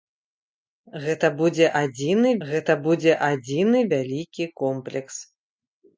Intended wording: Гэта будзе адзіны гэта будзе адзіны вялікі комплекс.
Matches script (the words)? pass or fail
pass